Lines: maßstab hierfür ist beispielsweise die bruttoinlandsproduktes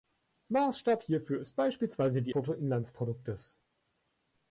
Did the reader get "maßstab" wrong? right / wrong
right